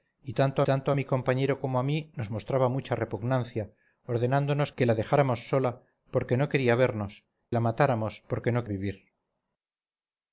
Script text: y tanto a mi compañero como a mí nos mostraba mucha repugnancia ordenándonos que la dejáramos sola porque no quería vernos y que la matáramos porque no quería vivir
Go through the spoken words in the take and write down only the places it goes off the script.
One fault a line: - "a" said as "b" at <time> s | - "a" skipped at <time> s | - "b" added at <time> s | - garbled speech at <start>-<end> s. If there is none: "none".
- "tanto" added at 0.6 s
- "y que" skipped at 7.2 s
- "quería" skipped at 8.6 s